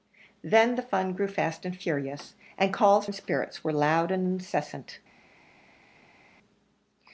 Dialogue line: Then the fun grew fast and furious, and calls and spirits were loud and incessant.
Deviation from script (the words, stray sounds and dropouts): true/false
false